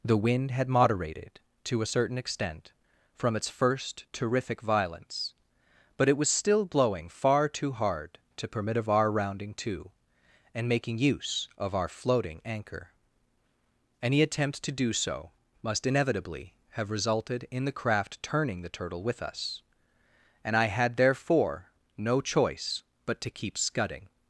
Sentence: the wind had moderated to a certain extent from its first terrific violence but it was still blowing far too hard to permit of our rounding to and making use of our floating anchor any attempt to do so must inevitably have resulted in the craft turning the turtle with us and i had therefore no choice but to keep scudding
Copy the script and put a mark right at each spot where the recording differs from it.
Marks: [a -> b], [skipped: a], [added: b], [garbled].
the wind had moderated to a certain extent from its first terrific violence but it was still blowing far too hard to permit of our rounding to and making use of our floating anchor any attempt to do so must inevitably have resulted in the craft turning the turtle with us and i had therefore no choice but to keep scudding